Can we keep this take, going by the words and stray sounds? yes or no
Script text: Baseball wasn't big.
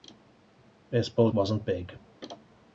yes